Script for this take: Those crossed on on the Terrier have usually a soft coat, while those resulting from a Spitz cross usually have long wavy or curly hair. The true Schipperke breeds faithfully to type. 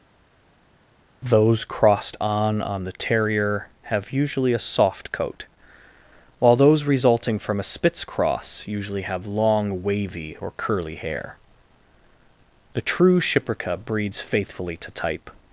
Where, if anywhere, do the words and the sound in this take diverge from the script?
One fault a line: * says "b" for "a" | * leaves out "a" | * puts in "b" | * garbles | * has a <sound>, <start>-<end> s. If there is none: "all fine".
all fine